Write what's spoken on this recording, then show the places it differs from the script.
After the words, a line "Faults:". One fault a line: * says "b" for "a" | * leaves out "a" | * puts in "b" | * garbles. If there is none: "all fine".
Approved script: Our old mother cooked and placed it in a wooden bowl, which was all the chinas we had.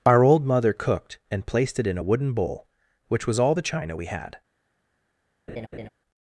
Our old mother cooked and placed it in a wooden bowl, which was all the china we had.
Faults:
* says "china" for "chinas"